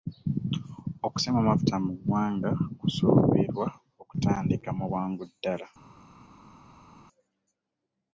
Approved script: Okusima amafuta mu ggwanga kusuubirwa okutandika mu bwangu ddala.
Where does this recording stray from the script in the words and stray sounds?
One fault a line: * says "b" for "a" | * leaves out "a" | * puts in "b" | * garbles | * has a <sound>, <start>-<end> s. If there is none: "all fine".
all fine